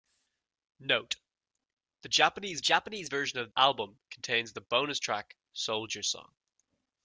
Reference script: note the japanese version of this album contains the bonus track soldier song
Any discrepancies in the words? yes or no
yes